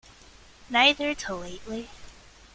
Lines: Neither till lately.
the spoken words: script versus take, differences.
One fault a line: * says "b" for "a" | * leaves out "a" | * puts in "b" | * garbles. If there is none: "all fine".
all fine